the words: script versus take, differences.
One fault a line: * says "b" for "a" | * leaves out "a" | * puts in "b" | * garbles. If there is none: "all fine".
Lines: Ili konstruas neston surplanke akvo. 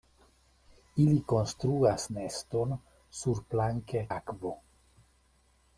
all fine